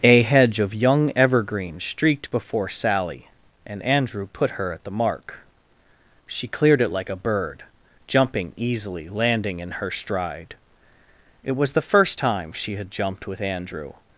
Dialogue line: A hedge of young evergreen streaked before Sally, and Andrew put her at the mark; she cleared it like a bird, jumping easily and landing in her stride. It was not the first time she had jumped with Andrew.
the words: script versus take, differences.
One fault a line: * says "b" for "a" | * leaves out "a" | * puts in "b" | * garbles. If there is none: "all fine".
* leaves out "and"
* leaves out "not"